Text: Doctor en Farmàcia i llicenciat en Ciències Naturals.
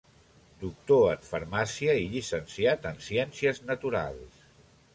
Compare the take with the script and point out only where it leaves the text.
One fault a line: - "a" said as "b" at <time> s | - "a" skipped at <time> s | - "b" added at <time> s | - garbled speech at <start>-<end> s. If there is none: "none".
none